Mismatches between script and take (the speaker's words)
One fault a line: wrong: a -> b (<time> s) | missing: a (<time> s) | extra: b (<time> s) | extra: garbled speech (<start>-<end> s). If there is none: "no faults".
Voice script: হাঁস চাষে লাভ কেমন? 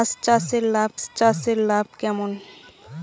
extra: হাঁস চাষে লাভ (1.0 s)